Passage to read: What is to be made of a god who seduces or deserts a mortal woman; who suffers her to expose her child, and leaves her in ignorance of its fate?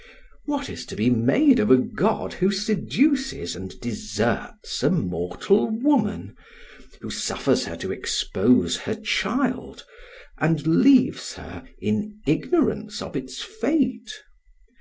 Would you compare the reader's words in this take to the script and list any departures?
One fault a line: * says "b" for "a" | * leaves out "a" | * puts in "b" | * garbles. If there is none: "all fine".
* says "and" for "or"